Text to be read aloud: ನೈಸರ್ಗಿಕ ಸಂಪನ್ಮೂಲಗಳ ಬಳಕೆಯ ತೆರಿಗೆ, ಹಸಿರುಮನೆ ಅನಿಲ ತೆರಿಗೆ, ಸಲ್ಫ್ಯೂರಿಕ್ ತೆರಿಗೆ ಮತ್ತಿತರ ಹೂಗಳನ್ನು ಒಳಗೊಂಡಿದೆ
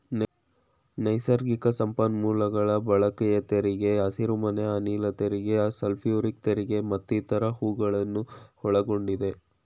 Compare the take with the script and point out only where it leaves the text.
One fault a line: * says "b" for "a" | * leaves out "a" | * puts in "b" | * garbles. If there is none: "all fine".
all fine